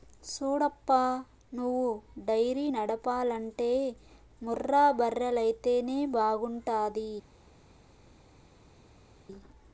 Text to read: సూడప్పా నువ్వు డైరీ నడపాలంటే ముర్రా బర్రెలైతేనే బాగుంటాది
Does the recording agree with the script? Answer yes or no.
yes